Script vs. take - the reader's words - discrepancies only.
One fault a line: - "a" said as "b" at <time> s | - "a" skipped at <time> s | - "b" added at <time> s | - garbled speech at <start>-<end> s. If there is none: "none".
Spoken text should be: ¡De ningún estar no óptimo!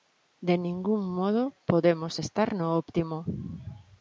- "modo podemos" added at 1.1 s